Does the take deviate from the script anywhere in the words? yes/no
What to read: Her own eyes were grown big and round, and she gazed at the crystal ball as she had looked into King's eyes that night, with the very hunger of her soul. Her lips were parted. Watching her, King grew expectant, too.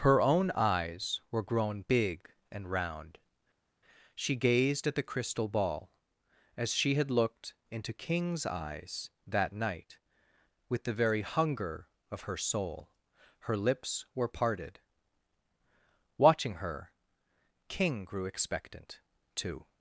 yes